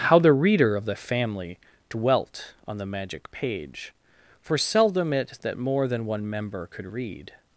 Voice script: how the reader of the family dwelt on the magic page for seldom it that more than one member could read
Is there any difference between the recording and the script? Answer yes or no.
no